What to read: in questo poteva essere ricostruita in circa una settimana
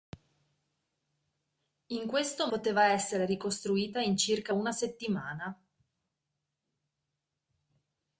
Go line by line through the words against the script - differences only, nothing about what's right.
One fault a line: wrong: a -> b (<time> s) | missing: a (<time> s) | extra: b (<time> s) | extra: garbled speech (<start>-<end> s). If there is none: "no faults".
no faults